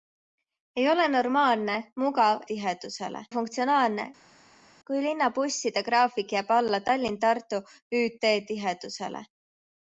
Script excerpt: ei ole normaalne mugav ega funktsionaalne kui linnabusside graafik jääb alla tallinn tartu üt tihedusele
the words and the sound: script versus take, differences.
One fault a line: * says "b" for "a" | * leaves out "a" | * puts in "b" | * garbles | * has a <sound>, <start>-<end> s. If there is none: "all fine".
* says "tihedusele" for "ega"